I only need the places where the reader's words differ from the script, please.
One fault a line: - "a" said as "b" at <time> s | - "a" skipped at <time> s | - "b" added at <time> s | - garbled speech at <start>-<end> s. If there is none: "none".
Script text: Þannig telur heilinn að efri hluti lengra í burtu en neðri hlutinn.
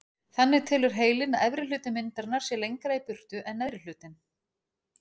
- "myndarinnar sé" added at 2.0 s